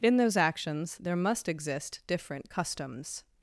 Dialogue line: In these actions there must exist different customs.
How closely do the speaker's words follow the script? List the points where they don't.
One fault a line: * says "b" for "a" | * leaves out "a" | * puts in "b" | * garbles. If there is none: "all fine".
* says "those" for "these"